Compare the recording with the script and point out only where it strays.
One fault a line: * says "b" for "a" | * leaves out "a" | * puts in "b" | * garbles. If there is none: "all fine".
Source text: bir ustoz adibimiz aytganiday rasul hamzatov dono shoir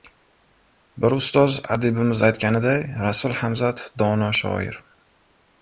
all fine